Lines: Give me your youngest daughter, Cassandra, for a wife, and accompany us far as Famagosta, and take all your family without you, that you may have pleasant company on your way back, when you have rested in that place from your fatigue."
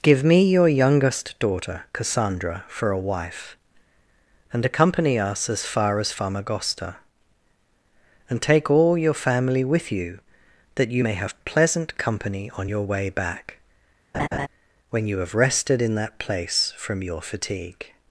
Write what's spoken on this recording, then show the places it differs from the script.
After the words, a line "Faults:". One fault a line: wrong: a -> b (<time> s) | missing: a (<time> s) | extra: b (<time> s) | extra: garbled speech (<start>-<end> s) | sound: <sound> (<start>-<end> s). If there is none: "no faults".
Give me your youngest daughter, Cassandra, for a wife, and accompany us as far as Famagosta, and take all your family with you, that you may have pleasant company on your way back, when you have rested in that place from your fatigue."
Faults:
extra: as (5.5 s)
wrong: without -> with (9.6 s)
sound: laugh (14.1-14.5 s)